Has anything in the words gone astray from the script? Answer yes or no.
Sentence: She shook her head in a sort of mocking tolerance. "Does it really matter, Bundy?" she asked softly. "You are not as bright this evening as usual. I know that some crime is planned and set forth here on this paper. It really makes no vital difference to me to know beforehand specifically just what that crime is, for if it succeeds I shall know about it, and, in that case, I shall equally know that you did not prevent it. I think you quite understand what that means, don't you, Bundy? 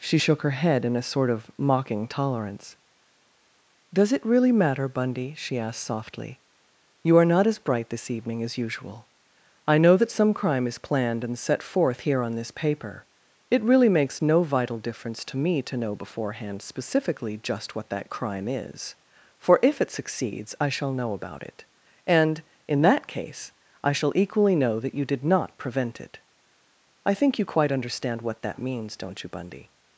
no